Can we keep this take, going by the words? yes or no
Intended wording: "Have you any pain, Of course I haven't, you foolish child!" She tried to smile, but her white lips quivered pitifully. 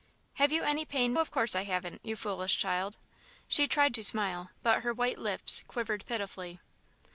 yes